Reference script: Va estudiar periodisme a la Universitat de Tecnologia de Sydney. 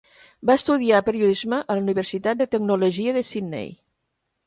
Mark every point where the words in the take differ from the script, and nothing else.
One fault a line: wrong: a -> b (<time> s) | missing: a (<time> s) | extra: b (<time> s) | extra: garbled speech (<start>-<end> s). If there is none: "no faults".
no faults